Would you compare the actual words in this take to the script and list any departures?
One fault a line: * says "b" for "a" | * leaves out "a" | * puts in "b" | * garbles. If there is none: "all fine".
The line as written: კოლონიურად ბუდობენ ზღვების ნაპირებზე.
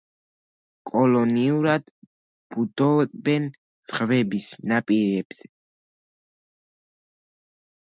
all fine